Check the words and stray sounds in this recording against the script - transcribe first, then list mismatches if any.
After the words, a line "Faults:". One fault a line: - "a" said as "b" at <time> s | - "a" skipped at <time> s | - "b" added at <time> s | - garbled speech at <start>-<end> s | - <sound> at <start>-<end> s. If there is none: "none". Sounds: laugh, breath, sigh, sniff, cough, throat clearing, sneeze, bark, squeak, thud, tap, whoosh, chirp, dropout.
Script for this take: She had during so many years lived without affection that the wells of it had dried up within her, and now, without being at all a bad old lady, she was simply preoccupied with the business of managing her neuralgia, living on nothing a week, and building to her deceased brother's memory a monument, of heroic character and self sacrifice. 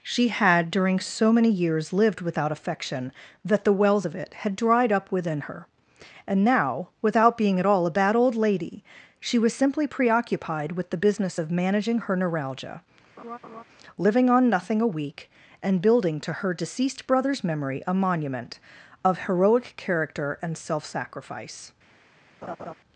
She had during so many years lived without affection that the wells of it had dried up within her, and now, without being at all a bad old lady, she was simply preoccupied with the business of managing her neuralgia, living on nothing a week, and building to her deceased brother's memory a monument, of heroic character and self sacrifice.
Faults:
- laugh at 13.2-13.6 s
- laugh at 22.4-22.7 s